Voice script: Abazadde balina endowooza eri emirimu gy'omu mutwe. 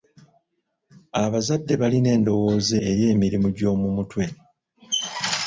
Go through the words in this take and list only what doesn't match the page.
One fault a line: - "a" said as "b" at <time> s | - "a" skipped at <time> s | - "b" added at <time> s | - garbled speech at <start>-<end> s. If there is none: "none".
none